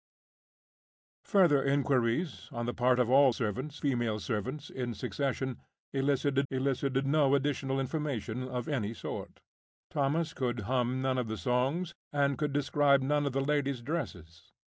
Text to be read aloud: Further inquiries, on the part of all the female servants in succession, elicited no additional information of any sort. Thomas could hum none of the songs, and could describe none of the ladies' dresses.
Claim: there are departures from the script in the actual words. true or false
true